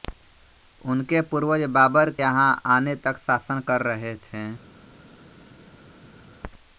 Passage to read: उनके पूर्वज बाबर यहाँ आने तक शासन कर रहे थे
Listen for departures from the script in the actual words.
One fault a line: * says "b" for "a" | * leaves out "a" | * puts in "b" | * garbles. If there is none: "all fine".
all fine